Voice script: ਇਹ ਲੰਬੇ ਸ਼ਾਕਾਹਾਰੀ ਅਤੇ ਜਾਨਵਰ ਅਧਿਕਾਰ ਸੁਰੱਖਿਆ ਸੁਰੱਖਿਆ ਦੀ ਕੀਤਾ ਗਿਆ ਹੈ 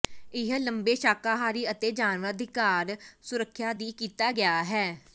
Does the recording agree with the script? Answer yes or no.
no